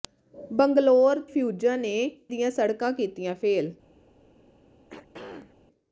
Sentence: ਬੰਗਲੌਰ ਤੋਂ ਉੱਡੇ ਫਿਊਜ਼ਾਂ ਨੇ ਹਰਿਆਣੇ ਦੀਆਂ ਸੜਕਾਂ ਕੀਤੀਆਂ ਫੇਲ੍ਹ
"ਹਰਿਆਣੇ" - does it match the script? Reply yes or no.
no